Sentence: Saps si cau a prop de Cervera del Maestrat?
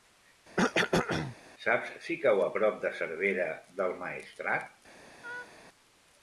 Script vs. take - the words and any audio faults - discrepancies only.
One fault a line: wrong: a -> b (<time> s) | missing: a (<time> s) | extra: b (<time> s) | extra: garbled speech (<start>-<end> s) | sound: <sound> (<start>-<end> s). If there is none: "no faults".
sound: cough (0.6-1.4 s)
sound: laugh (5.2-5.5 s)